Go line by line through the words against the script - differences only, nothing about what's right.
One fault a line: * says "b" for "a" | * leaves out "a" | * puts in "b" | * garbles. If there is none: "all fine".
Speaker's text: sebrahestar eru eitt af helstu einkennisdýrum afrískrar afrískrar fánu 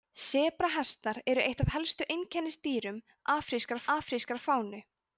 all fine